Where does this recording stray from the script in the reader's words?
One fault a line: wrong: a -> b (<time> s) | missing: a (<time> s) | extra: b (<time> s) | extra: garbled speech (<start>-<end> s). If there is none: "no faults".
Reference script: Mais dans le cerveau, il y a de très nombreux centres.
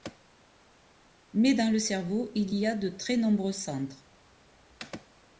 no faults